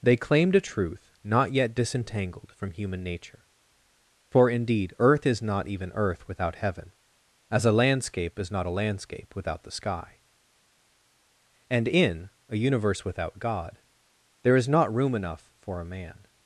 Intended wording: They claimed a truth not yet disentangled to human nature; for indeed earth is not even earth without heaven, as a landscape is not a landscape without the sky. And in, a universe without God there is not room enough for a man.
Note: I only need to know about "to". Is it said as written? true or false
false